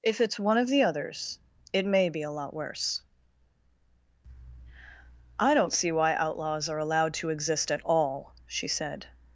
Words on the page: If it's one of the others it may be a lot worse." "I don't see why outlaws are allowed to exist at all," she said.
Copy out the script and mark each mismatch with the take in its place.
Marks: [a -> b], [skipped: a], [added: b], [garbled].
If it's one of the others it may be a lot worse." "I don't see why outlaws are allowed to exist at all," she said.